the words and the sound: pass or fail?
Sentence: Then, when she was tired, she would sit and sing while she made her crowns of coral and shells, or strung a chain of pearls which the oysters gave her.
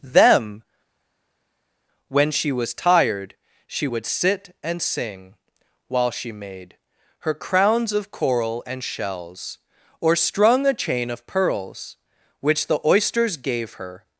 fail